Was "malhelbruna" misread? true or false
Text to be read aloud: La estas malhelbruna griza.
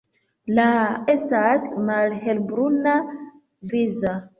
false